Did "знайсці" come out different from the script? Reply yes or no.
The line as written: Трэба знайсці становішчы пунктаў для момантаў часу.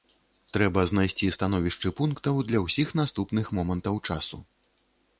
no